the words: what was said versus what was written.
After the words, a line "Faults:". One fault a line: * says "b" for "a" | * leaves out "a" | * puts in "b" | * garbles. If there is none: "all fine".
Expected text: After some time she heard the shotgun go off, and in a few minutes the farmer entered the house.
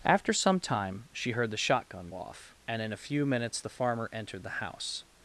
After some time she heard the shotgun off, and in a few minutes the farmer entered the house.
Faults:
* leaves out "go"